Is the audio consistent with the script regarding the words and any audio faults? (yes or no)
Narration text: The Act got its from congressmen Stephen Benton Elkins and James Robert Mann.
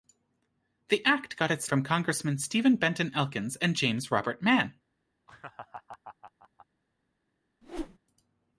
no